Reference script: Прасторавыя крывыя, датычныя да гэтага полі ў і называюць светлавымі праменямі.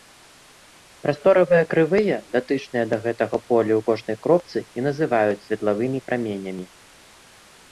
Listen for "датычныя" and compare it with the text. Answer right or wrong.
right